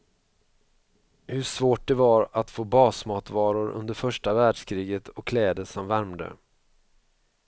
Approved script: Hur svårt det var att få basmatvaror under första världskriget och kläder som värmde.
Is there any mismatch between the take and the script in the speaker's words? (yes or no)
no